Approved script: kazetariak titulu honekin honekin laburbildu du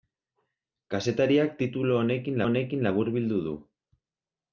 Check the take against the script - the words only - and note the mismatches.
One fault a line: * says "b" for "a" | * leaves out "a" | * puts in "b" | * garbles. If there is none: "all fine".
all fine